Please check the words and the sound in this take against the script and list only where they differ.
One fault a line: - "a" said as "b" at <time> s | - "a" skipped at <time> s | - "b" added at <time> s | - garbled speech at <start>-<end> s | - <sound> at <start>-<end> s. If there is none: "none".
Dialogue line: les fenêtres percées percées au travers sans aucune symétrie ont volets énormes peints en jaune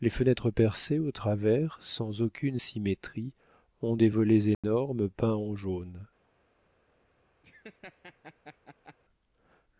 - "percées" skipped at 1.0 s
- "des" added at 3.9 s
- dropout at 4.5-4.6 s
- laugh at 7.4-9.0 s